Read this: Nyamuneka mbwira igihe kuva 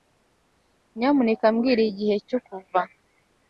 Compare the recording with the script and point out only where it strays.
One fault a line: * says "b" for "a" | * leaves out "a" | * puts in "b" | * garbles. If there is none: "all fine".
* puts in "cyo"